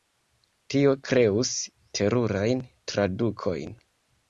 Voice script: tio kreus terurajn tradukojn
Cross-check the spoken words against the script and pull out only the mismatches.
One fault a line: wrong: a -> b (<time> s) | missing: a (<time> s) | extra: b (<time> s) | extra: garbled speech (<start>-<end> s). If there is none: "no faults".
no faults